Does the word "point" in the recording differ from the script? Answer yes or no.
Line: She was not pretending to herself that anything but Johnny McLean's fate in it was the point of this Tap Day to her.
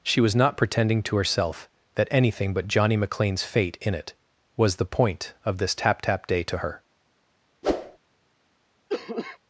no